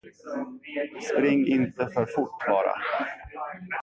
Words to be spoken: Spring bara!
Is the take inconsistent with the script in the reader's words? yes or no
yes